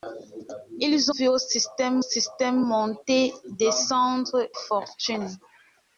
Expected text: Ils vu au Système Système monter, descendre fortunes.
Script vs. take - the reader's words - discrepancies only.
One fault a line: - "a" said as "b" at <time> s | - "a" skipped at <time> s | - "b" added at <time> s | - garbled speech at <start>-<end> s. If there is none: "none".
none